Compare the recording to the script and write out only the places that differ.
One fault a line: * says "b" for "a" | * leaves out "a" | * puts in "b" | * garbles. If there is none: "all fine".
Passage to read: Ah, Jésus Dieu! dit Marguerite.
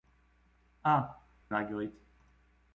* leaves out "Jésus Dieu dit"